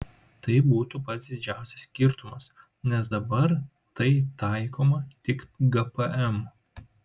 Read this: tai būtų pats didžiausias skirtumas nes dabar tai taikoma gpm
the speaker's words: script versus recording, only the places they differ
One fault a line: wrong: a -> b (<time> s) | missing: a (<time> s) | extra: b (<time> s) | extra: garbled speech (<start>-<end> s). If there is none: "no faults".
extra: tik (5.3 s)